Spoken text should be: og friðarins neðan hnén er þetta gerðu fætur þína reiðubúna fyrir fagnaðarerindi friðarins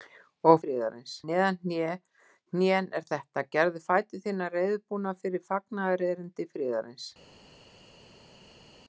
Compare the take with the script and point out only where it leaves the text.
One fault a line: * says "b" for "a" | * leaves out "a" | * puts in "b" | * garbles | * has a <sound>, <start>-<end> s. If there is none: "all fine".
all fine